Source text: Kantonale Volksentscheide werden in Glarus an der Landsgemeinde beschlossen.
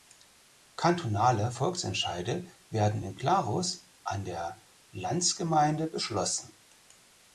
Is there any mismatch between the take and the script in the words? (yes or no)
no